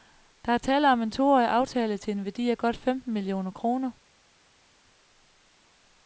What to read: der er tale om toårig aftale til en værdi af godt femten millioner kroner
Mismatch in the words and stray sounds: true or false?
true